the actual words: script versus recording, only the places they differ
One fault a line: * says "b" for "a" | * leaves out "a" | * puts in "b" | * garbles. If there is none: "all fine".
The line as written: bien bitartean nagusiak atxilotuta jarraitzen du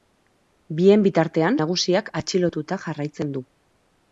all fine